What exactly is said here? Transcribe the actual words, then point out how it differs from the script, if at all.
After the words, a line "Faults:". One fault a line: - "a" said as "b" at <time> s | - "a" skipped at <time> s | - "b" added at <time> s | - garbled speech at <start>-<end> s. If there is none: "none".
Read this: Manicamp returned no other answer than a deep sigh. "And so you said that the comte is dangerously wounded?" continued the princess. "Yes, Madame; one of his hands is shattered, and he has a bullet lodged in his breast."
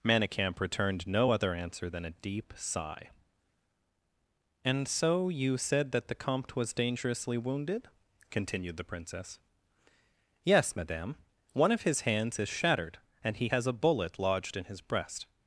Manicamp returned no other answer than a deep sigh. "And so you said that the comte was dangerously wounded?" continued the princess. "Yes, Madame; one of his hands is shattered, and he has a bullet lodged in his breast."
Faults:
- "is" said as "was" at 6.6 s